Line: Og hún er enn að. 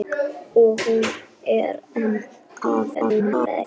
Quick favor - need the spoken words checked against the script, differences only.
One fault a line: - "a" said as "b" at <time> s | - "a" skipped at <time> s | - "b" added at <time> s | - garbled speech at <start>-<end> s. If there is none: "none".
- garbled speech at 2.9-3.6 s